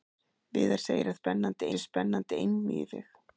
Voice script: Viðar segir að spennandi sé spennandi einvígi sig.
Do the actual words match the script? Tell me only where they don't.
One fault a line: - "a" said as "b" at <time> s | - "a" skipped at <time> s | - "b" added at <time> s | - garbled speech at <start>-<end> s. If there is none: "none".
none